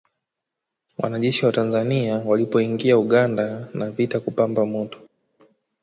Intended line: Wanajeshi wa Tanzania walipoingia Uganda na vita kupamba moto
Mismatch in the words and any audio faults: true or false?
false